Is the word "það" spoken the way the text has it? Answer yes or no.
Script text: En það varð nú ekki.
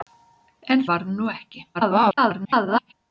no